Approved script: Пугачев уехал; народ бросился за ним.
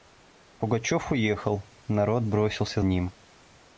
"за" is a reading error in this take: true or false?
true